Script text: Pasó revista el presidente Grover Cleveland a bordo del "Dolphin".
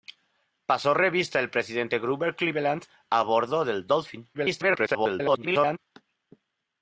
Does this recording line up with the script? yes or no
no